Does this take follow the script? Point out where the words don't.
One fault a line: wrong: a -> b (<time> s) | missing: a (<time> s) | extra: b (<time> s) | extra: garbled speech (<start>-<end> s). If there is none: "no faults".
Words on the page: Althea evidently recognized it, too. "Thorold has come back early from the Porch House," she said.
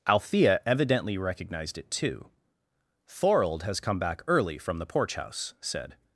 missing: she (5.5 s)